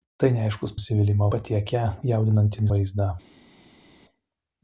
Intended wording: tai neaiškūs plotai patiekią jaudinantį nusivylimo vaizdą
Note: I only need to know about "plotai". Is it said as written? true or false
false